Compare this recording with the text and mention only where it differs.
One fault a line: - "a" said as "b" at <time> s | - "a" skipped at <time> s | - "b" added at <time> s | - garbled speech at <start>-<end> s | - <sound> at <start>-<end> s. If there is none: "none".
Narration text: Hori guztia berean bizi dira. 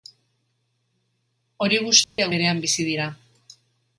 - dropout at 2.0-2.2 s